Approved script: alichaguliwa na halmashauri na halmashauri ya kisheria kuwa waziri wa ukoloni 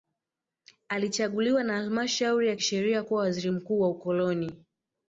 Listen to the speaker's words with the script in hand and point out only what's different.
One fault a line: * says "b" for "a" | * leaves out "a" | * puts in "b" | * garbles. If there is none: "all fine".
* leaves out "na halmashauri"
* puts in "mkuu"